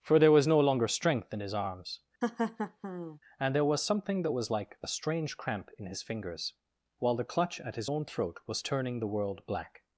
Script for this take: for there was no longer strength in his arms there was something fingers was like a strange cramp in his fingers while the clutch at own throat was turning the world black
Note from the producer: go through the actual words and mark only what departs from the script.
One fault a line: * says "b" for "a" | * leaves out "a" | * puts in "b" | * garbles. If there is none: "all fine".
* puts in "and"
* says "that" for "fingers"
* puts in "his"